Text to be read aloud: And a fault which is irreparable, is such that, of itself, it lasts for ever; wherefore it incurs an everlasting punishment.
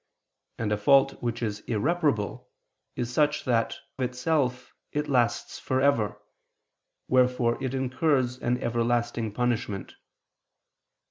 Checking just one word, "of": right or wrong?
wrong